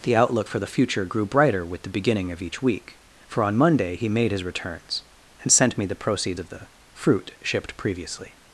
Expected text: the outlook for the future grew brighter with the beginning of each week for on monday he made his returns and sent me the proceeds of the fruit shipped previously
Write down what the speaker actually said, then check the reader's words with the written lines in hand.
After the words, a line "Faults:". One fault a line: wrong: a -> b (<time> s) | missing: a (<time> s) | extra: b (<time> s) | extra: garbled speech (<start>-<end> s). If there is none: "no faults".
the outlook for the future grew brighter with the beginning of each week for on monday he made his returns and sent me the proceeds of the fruit shipped previously
Faults:
no faults